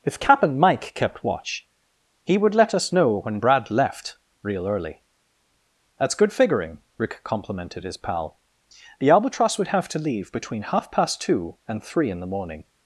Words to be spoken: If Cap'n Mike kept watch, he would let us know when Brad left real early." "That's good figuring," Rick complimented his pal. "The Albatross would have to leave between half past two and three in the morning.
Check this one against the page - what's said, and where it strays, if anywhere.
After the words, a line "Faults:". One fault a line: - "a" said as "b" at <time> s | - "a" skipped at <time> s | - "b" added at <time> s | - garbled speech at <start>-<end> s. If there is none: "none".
If Cap'n Mike kept watch, he would let us know when Brad left real early." "That's good figuring," Rick complimented his pal. "The Albatross would have to leave between half past two and three in the morning.
Faults:
none